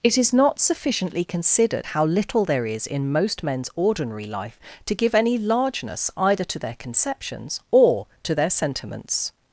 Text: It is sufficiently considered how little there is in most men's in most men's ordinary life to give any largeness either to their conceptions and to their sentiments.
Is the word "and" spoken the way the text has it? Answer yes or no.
no